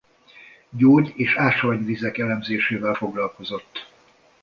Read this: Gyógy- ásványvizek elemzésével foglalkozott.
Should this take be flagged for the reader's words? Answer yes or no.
yes